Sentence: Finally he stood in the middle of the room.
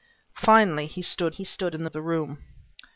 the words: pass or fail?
fail